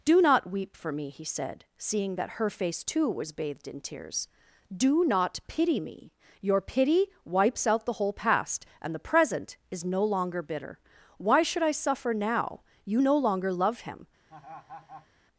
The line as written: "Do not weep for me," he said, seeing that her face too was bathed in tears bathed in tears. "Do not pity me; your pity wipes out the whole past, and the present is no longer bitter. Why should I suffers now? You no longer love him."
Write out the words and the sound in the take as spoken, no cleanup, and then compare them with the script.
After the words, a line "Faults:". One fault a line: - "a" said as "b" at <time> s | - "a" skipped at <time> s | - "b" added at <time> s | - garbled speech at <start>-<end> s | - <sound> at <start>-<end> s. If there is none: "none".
"Do not weep for me," he said, seeing that her face too was bathed in tears. "Do not pity me; your pity wipes out the whole past, and the present is no longer bitter. Why should I suffer now? You no longer love him."
Faults:
- "bathed in tears" skipped at 4.3 s
- "suffers" said as "suffer" at 11.7 s
- laugh at 14.3-15.1 s